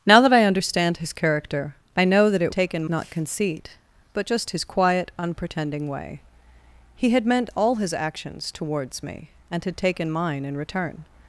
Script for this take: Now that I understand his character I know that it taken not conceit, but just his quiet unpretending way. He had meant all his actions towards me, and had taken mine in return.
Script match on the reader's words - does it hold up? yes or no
yes